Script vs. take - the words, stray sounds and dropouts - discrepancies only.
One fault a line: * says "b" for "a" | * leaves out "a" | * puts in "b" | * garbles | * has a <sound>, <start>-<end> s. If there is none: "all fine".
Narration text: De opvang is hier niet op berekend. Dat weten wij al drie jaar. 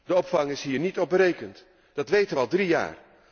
all fine